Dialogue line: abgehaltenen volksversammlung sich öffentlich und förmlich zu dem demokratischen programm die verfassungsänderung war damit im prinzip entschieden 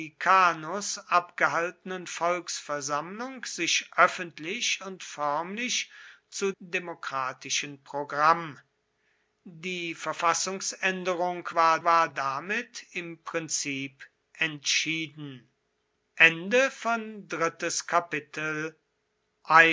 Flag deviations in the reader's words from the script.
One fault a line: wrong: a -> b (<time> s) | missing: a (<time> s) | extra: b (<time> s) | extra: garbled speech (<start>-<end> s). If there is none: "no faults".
missing: dem (6.5 s)
extra: war (11.8 s)